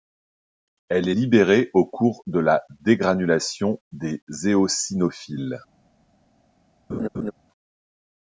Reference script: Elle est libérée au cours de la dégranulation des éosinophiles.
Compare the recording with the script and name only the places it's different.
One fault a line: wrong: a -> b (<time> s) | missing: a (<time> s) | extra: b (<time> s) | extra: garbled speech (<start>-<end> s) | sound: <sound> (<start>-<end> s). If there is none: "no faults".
sound: laugh (6.9-7.3 s)